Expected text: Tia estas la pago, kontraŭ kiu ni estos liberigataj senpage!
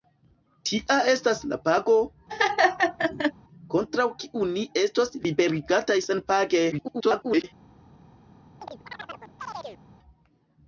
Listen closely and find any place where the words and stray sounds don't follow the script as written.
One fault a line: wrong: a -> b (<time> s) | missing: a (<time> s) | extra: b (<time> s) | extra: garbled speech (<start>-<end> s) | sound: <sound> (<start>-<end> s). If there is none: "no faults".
sound: laugh (2.3-3.3 s)
extra: garbled speech (6.7-7.4 s)
sound: chirp (8.6-9.8 s)